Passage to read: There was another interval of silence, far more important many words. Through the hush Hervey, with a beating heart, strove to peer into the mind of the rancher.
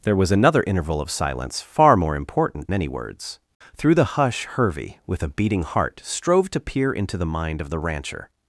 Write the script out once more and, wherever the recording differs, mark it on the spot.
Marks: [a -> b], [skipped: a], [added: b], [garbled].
There was another interval of silence, far more important many words. Through the hush Hervey, with a beating heart, strove to peer into the mind of the rancher.